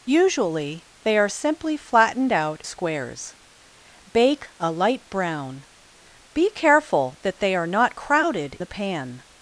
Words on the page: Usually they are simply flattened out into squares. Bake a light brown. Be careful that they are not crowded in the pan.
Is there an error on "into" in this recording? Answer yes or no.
yes